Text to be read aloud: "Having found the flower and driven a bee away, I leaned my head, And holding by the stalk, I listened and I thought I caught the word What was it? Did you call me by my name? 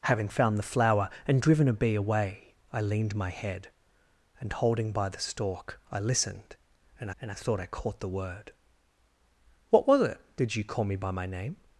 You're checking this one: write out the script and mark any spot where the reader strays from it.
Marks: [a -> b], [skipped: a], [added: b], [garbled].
"Having found the flower and driven a bee away, I leaned my head, And holding by the stalk, I listened and [added: and] I thought I caught the word What was it? Did you call me by my name?